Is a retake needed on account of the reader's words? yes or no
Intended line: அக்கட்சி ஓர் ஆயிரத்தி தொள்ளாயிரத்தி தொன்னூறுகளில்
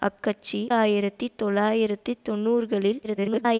yes